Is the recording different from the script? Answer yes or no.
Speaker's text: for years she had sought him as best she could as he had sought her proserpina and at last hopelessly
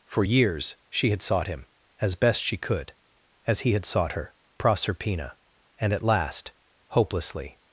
no